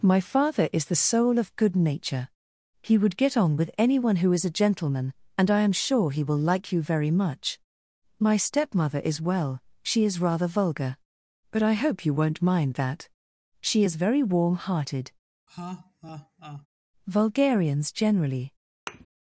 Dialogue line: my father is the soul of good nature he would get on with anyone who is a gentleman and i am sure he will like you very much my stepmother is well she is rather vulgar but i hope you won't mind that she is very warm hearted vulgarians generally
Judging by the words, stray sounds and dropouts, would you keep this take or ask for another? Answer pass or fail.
fail